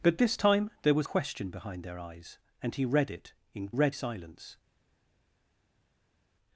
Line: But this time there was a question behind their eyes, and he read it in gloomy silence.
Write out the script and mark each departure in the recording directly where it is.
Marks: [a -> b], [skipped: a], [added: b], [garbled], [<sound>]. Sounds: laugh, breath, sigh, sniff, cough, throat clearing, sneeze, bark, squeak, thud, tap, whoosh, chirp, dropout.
But this time there was [skipped: a] question behind their eyes, and he read it in [gloomy -> read] silence.